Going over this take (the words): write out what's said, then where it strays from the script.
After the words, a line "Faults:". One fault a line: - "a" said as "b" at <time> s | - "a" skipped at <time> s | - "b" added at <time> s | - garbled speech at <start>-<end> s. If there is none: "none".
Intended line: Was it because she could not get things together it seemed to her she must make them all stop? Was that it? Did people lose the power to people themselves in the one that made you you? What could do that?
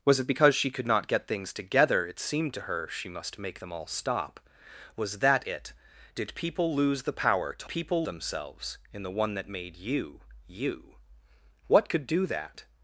Was it because she could not get things together it seemed to her she must make them all stop? Was that it? Did people lose the power to people themselves in the one that made you you? What could do that?
Faults:
none